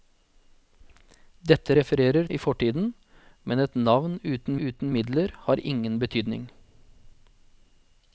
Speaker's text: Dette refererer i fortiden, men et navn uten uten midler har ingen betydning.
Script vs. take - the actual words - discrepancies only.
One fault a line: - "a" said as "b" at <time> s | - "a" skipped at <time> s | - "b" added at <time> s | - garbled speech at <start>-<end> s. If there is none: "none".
none